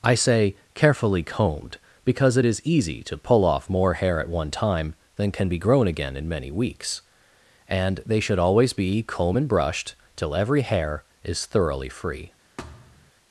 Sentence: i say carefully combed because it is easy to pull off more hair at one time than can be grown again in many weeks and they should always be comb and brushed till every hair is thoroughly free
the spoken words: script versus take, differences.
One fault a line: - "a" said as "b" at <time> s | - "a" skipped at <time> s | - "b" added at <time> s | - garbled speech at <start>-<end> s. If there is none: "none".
none